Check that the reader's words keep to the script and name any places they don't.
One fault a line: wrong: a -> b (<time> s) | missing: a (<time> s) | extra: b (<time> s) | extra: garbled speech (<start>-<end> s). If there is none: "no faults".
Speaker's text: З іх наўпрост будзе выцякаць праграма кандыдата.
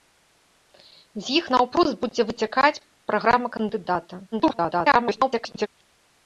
extra: garbled speech (4.3-5.7 s)